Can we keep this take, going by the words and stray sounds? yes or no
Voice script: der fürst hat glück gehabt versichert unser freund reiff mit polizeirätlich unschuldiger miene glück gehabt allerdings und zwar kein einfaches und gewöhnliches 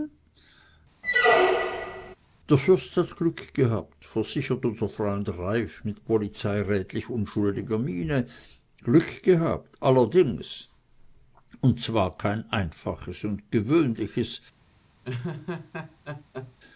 no